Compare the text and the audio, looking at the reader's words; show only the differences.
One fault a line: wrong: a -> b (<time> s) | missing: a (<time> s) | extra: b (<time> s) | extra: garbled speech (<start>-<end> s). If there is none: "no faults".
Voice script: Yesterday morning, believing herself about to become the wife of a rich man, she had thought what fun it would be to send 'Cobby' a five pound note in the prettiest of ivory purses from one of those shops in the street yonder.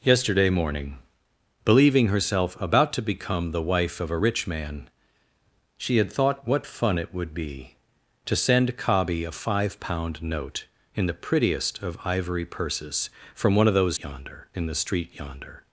wrong: shops -> yonder (14.0 s)